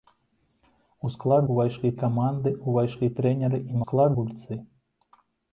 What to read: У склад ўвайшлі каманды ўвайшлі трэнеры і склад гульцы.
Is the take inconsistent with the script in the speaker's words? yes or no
no